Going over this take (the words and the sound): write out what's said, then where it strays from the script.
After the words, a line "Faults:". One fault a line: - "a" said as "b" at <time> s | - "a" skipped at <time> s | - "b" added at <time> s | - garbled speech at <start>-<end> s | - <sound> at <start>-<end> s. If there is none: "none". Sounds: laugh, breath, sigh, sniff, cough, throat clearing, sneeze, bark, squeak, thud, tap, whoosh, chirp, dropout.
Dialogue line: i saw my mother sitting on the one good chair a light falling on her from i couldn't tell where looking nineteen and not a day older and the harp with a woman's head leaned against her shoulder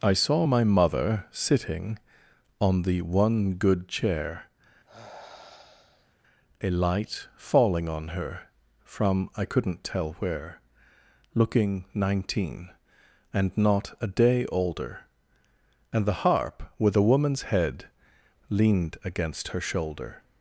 i saw my mother sitting on the one good chair a light falling on her from i couldn't tell where looking nineteen and not a day older and the harp with a woman's head leaned against her shoulder
Faults:
- sigh at 4.8-6.2 s